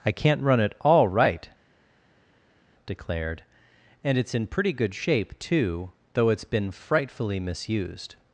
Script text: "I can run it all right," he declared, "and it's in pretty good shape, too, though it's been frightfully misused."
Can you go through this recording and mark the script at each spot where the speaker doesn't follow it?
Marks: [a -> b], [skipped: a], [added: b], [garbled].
"I [can -> can't] run it all right," [skipped: he] declared, "and it's in pretty good shape, too, though it's been frightfully misused."